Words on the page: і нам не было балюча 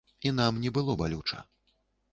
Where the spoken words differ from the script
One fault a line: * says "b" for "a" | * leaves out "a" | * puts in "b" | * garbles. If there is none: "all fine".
all fine